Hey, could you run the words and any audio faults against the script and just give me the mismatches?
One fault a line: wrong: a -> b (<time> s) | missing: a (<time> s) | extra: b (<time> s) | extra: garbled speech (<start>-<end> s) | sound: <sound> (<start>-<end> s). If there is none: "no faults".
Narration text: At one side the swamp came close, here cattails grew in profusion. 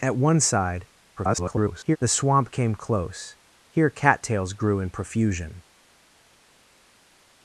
extra: garbled speech (1.2-2.0 s)